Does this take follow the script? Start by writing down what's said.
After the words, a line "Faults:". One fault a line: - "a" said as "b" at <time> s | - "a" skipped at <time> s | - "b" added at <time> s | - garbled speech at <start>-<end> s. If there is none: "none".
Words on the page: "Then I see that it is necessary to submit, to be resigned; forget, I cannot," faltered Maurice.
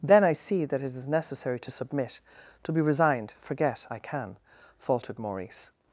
"Then I see that it is necessary to submit, to be resigned; forget, I can," faltered Maurice.
Faults:
- "cannot" said as "can" at 4.0 s